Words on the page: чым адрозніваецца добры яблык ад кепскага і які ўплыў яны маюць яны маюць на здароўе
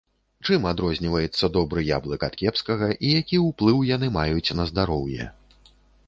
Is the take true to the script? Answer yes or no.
no